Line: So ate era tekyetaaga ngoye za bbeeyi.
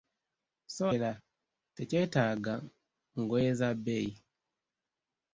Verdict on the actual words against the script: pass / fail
fail